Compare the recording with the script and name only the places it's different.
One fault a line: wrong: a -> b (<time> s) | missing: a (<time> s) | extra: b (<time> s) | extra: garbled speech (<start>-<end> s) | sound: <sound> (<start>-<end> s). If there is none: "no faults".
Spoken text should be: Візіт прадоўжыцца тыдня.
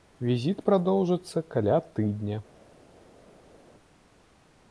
extra: каля (1.6 s)